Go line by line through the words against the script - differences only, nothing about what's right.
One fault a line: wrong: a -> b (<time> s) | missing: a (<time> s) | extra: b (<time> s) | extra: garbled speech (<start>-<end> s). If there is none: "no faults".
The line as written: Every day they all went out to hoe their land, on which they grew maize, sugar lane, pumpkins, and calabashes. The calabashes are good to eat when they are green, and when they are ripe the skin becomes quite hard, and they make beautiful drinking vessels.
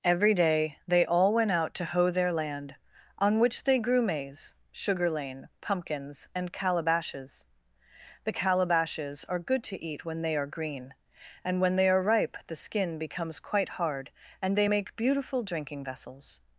no faults